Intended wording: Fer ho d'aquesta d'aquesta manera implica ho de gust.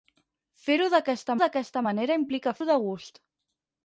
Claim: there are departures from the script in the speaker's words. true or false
false